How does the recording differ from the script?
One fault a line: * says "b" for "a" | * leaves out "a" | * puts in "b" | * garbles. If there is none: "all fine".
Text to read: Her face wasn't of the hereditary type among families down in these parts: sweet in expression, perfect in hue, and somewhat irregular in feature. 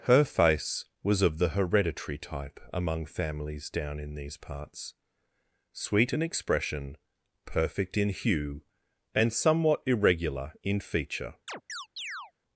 * says "was" for "wasn't"